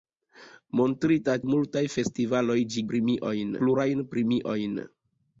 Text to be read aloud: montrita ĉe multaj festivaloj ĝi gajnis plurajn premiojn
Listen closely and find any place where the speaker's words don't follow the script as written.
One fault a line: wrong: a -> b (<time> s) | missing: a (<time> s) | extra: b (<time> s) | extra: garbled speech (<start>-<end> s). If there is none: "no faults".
missing: ĉe (1.3 s)
wrong: gajnis -> premiojn (2.9 s)